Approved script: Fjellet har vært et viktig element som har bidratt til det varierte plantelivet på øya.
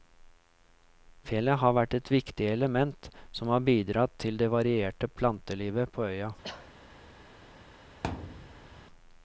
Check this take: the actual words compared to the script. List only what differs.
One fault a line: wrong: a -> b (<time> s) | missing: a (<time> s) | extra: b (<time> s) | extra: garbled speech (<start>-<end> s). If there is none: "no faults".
no faults